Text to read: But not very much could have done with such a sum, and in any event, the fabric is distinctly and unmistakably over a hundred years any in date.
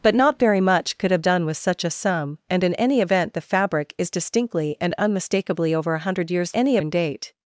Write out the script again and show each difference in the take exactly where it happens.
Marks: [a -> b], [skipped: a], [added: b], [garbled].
But not very much could have done with such a sum, and in any event, the fabric is distinctly and unmistakably over a hundred years any in date.